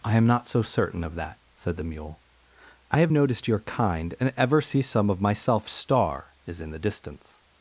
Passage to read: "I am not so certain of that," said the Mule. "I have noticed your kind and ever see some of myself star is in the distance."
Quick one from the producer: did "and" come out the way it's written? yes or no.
yes